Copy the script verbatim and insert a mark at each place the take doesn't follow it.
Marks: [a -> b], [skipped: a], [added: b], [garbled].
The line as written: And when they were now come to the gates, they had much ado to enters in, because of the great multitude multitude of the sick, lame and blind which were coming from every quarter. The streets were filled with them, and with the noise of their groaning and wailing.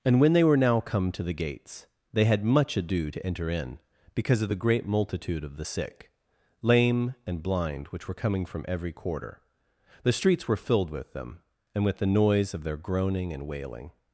And when they were now come to the gates, they had much ado to [enters -> enter] in, because of the great multitude [skipped: multitude] of the sick, lame and blind which were coming from every quarter. The streets were filled with them, and with the noise of their groaning and wailing.